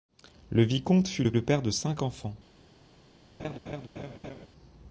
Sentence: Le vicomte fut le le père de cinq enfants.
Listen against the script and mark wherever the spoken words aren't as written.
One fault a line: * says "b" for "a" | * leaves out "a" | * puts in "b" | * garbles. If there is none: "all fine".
all fine